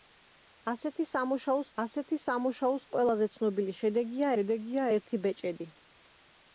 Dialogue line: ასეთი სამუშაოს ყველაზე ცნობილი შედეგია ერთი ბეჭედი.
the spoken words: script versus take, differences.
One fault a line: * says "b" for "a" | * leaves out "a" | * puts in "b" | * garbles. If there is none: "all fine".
* puts in "ასეთი სამუშაოს"
* puts in "შედეგია"